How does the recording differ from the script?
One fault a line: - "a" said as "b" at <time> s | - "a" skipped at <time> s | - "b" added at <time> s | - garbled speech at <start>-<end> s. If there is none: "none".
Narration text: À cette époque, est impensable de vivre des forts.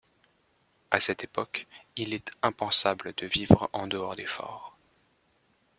- "il" added at 1.9 s
- "en dehors" added at 3.7 s